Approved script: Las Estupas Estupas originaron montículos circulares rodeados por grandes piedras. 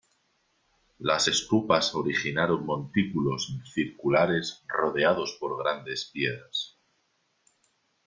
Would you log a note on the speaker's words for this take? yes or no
yes